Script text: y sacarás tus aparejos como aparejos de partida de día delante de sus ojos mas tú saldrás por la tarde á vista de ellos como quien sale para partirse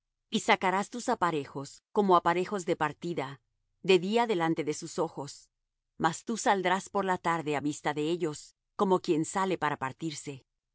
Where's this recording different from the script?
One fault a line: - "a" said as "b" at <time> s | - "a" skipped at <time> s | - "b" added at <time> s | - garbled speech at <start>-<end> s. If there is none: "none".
none